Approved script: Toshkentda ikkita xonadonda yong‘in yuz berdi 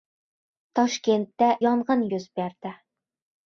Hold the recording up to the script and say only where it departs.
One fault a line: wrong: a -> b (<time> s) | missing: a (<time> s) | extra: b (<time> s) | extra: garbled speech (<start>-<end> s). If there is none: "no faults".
missing: ikkita xonadonda (1.5 s)